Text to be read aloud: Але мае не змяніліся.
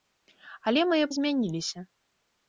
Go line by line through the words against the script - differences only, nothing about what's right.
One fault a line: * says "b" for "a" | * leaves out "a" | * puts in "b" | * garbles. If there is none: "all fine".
all fine